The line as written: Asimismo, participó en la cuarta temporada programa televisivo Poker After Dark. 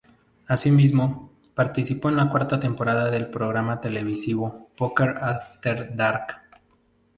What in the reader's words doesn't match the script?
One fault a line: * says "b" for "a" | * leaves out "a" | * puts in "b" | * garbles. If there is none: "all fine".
* puts in "del"